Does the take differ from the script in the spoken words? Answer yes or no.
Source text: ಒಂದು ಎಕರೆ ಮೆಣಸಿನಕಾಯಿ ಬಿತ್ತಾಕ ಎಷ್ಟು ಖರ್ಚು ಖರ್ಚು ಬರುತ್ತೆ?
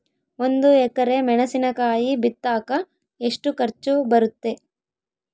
yes